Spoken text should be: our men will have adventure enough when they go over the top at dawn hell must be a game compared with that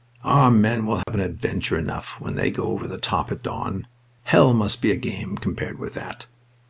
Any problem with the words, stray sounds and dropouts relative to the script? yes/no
yes